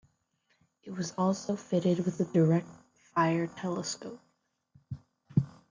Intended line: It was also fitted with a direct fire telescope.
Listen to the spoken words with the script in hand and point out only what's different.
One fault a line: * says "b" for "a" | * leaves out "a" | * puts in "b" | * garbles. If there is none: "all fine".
all fine